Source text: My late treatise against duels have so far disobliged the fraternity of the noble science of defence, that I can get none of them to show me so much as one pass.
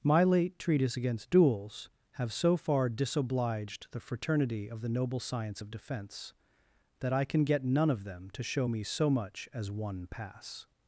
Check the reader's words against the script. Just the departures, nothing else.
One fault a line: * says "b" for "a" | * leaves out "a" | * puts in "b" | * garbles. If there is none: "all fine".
all fine